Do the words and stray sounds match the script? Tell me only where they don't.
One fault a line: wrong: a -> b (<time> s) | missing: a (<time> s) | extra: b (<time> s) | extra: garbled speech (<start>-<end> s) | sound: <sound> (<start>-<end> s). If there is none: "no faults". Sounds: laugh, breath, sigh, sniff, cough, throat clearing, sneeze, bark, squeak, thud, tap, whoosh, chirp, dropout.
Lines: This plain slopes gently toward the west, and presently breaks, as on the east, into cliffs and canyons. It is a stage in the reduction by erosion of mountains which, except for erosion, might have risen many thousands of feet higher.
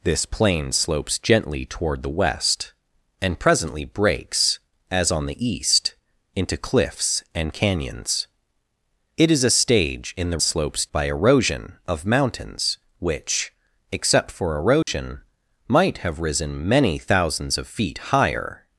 wrong: reduction -> slopes (10.4 s)
sound: dropout (14.8-14.9 s)